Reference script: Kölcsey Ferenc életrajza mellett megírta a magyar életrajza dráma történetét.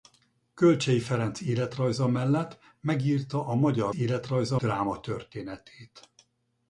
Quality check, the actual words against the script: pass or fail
pass